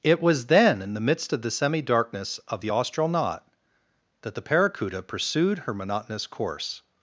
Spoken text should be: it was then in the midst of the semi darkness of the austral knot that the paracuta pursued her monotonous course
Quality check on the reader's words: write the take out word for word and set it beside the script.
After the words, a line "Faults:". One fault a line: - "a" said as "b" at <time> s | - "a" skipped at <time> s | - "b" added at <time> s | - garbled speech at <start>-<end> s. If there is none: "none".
it was then in the midst of the semi darkness of the austral knot that the paracuta pursued her monotonous course
Faults:
none